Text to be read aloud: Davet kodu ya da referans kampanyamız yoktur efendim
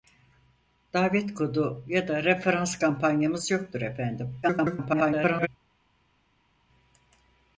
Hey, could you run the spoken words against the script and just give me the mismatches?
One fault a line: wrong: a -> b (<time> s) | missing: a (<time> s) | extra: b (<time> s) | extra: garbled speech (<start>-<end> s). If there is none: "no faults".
extra: garbled speech (4.4-5.5 s)